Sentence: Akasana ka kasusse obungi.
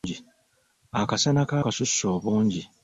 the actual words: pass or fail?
pass